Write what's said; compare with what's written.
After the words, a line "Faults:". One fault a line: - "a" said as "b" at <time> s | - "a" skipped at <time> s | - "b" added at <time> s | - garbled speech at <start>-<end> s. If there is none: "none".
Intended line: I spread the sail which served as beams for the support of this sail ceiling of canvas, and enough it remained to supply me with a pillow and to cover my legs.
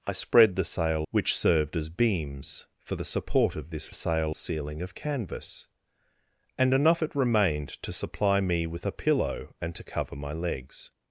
I spread the sail which served as beams for the support of this sail ceiling of canvas, and enough it remained to supply me with a pillow and to cover my legs.
Faults:
none